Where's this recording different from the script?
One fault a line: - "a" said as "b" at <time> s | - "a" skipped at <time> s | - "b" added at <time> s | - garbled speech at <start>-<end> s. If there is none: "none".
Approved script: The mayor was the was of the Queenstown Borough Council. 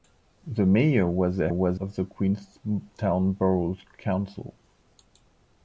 none